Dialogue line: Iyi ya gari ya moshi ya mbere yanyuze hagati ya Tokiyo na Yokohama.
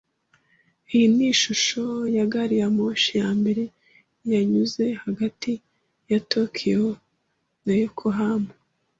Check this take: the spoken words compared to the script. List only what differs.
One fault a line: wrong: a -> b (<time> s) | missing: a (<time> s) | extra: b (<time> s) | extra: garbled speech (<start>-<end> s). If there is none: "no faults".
extra: ni ishusho (1.1 s)